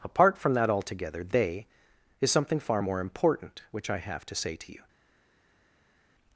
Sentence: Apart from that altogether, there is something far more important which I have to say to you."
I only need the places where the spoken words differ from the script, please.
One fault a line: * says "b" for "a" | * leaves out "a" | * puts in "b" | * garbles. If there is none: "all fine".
* says "they" for "there"